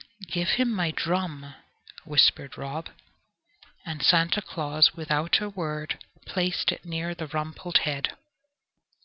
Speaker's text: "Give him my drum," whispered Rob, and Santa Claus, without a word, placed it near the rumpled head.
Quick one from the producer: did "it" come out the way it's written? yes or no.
yes